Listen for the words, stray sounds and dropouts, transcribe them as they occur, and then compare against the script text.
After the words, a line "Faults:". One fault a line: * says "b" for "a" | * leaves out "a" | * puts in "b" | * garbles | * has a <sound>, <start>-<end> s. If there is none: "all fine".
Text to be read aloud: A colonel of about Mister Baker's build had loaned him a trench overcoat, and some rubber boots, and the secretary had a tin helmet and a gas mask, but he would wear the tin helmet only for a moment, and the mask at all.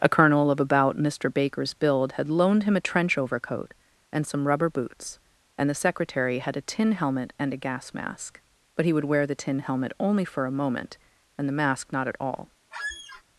A colonel of about Mister Baker's build had loaned him a trench overcoat, and some rubber boots, and the secretary had a tin helmet and a gas mask, but he would wear the tin helmet only for a moment, and the mask not at all.
Faults:
* puts in "not"
* has a squeak, 12.7-13.2 s